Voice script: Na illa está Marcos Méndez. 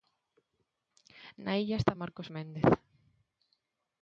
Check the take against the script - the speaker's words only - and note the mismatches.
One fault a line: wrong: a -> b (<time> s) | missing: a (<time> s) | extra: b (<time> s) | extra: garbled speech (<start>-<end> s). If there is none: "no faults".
no faults